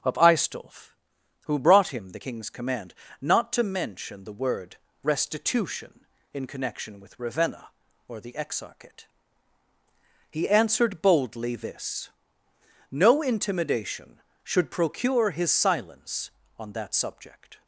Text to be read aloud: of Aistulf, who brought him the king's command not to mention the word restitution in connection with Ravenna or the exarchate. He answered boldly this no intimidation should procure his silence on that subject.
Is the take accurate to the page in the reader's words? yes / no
yes